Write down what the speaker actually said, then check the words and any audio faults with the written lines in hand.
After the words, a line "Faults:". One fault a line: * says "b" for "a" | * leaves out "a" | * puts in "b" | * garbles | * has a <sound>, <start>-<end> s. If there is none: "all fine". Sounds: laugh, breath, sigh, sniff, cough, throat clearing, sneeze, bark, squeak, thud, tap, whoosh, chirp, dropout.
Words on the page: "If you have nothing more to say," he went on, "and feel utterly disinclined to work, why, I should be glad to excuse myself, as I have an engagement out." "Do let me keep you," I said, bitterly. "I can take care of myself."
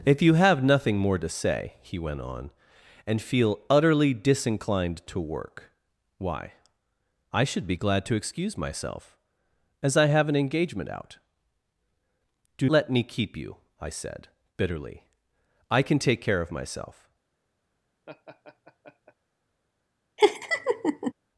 "If you have nothing more to say," he went on, "and feel utterly disinclined to work, why, I should be glad to excuse myself, as I have an engagement out." "Do let me keep you," I said, bitterly. "I can take care of myself."
Faults:
* has a laugh, 18.1-19.1 s
* has a laugh, 20.2-21.1 s